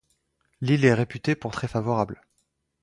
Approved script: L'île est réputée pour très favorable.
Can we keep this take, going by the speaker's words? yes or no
yes